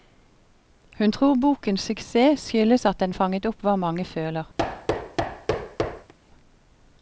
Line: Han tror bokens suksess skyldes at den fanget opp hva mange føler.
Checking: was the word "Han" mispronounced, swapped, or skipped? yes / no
yes